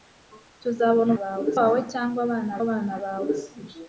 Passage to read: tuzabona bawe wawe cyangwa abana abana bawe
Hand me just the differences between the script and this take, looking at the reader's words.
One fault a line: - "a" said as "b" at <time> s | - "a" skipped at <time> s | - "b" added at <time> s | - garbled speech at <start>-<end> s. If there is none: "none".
none